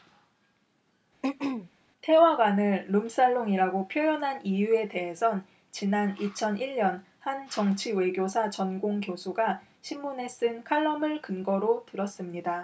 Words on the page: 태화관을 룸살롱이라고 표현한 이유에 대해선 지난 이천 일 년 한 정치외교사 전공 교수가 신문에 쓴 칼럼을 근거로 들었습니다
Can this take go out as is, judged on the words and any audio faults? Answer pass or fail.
fail